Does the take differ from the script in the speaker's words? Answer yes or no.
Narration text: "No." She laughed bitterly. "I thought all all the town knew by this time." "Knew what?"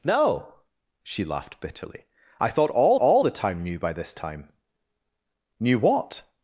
no